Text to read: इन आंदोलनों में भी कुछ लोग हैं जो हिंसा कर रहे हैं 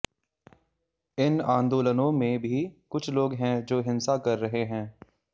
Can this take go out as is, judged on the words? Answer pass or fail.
pass